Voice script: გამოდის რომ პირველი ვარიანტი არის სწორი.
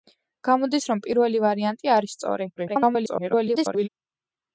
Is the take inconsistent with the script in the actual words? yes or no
yes